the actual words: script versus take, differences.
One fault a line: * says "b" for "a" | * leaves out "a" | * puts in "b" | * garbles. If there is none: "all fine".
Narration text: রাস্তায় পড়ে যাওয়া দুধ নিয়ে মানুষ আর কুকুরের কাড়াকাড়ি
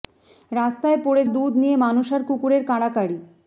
* leaves out "যাওয়া"